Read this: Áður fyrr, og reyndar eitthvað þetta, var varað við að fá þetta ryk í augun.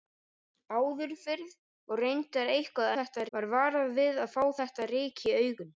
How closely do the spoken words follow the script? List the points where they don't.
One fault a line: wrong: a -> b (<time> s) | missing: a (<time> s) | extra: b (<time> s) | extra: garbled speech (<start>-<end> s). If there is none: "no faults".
no faults